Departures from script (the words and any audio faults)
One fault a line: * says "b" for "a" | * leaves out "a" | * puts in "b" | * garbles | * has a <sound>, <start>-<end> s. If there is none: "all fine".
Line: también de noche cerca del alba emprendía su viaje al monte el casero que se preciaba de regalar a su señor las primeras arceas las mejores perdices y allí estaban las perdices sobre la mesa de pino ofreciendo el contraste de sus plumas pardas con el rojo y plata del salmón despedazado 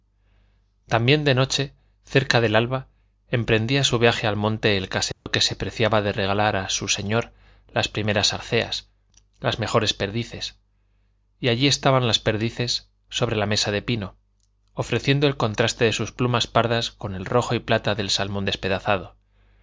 * has a dropout, 5.1-5.3 s